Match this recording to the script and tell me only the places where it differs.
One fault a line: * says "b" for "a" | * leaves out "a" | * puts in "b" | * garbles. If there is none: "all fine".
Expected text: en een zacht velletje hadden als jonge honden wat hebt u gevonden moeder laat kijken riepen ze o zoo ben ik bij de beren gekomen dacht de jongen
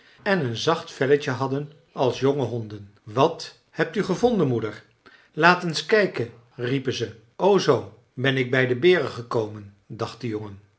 * puts in "eens"